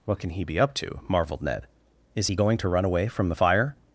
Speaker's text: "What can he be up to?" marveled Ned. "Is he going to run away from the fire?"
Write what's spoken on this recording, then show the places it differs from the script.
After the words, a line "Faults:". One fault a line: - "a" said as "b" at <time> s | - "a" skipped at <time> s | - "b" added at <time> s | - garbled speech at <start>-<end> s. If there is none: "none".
"What can he be up to?" marveled Ned. "Is he going to run away from the fire?"
Faults:
none